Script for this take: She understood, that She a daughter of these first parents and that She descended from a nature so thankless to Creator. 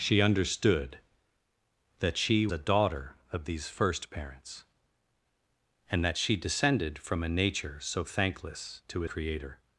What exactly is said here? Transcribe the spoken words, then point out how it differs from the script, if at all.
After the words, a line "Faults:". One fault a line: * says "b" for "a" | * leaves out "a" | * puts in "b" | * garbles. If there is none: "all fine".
She understood, that She a daughter of these first parents and that She descended from a nature so thankless to Creator.
Faults:
all fine